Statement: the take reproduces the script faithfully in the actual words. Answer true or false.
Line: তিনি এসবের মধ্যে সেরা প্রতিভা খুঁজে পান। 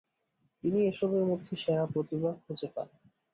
true